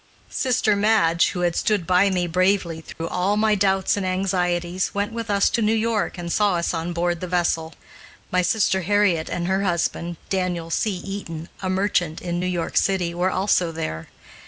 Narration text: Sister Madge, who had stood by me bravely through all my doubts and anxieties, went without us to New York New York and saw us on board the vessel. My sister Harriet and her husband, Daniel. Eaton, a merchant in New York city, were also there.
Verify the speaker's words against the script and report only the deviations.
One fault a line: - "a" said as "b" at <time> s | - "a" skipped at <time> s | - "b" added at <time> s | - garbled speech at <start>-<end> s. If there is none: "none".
- "without" said as "with" at 5.1 s
- "New York" skipped at 6.2 s
- "C" added at 10.7 s